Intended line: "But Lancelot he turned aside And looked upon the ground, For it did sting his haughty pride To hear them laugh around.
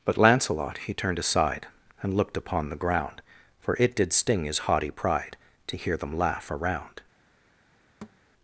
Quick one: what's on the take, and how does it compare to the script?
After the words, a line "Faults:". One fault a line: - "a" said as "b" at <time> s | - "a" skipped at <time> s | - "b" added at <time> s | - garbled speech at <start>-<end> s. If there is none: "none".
"But Lancelot he turned aside And looked upon the ground, For it did sting his haughty pride To hear them laugh around.
Faults:
none